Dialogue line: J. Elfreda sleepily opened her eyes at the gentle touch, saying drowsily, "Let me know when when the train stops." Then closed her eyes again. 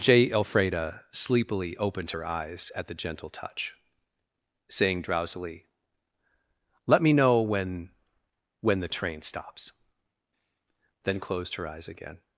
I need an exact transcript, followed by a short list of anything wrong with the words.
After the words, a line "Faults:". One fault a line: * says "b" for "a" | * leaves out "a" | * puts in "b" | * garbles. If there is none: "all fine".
J. Elfreda sleepily opened her eyes at the gentle touch, saying drowsily, "Let me know when when the train stops." Then closed her eyes again.
Faults:
all fine